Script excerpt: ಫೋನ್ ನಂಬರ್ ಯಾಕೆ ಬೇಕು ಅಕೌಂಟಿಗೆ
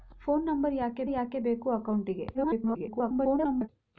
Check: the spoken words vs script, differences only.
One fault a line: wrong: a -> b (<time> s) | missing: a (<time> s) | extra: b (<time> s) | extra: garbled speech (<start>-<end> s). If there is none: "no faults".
extra: ಯಾಕೆ (1.1 s)
extra: garbled speech (2.3-3.7 s)